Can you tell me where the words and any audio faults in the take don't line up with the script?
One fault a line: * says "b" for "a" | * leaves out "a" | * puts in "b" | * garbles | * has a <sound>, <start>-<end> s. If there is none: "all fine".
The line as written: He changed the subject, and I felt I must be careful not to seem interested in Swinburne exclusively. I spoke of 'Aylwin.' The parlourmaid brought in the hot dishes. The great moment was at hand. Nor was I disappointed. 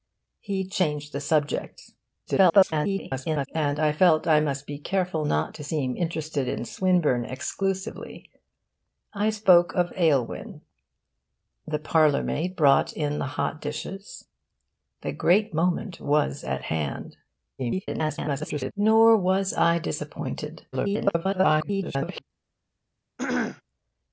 * garbles
* garbles
* garbles
* has a throat clearing, 23.2-23.6 s